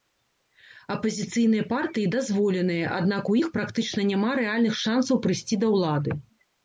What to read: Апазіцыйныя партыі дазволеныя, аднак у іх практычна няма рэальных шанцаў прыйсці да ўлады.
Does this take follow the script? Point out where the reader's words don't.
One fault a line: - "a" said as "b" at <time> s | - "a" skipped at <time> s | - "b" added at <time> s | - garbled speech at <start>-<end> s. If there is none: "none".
none